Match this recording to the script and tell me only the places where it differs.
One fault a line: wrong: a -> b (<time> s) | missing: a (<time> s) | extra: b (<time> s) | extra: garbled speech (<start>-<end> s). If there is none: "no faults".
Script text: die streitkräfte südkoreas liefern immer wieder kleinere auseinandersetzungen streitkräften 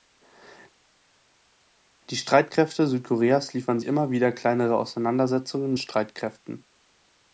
no faults